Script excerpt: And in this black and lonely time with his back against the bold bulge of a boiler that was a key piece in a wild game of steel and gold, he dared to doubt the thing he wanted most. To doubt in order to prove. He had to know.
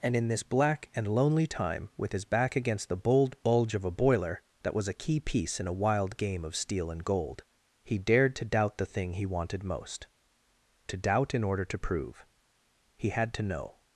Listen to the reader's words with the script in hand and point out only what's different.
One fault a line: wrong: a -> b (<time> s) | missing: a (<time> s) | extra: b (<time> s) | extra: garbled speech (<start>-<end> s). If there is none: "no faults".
no faults